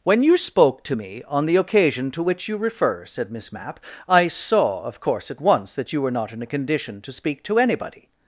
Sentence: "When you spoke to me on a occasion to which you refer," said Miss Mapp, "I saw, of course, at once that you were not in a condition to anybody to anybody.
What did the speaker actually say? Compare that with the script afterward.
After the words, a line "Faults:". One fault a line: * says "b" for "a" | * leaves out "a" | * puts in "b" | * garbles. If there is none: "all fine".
"When you spoke to me on the occasion to which you refer," said Miss Mapp, "I saw, of course, at once that you were not in a condition to speak to anybody.
Faults:
* says "the" for "a"
* says "speak" for "anybody"